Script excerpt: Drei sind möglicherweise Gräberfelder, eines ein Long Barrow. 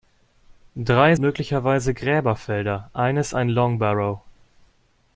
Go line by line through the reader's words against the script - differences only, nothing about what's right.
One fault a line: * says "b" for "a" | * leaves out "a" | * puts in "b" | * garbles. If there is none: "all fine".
* leaves out "sind"